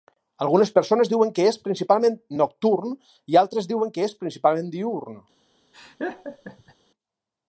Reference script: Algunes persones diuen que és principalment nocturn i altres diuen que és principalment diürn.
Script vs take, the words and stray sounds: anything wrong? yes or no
yes